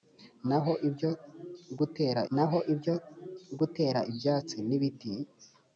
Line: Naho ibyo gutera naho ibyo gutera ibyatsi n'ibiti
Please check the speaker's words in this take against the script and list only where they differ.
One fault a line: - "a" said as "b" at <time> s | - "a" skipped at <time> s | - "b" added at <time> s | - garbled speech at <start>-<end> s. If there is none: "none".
none